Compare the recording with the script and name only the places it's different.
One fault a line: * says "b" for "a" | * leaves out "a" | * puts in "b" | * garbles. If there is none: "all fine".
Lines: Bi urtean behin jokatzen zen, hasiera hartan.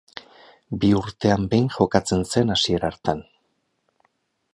all fine